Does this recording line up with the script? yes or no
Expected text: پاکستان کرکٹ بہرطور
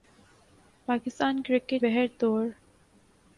yes